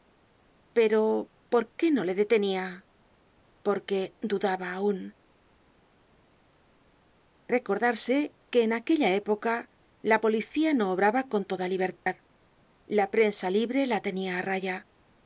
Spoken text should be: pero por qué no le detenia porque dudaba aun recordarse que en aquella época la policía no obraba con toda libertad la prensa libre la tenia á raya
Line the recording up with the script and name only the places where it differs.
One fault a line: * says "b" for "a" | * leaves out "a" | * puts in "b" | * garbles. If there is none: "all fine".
all fine